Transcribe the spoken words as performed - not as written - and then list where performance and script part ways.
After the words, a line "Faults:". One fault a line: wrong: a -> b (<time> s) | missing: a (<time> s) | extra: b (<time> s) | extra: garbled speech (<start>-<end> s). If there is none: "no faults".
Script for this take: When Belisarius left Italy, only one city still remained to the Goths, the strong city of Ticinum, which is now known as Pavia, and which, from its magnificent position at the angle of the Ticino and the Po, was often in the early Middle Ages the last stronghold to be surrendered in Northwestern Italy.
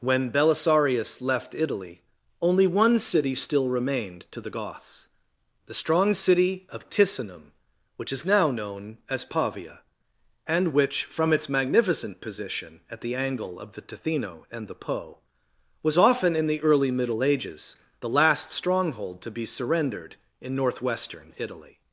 When Belisarius left Italy, only one city still remained to the Goths, the strong city of Ticinum, which is now known as Pavia, and which, from its magnificent position at the angle of the Ticino and the Po, was often in the early Middle Ages the last stronghold to be surrendered in Northwestern Italy.
Faults:
no faults